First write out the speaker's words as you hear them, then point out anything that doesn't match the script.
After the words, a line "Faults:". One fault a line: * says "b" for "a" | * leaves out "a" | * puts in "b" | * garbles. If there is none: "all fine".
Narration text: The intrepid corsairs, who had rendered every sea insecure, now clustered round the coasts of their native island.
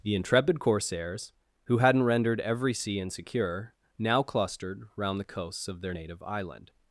The intrepid corsairs, who hadn't rendered every sea insecure, now clustered round the coasts of their native island.
Faults:
* says "hadn't" for "had"